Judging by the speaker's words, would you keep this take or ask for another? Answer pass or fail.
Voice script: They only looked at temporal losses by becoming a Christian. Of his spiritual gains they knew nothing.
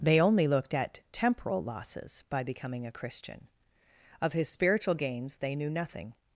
pass